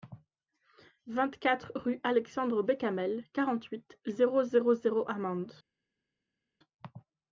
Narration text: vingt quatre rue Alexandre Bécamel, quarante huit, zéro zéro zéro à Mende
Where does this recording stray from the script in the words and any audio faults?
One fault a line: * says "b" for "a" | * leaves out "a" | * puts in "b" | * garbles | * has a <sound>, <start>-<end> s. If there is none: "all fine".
all fine